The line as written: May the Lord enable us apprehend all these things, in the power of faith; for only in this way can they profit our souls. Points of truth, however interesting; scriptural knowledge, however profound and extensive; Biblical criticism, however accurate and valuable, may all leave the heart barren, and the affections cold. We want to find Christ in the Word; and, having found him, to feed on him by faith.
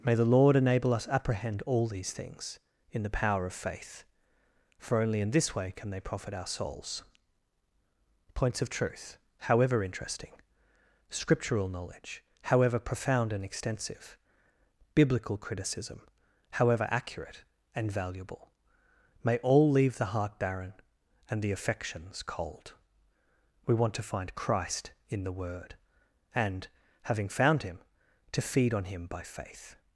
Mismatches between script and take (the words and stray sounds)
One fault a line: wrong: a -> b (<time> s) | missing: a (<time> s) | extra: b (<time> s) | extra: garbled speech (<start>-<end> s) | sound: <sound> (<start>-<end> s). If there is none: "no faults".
no faults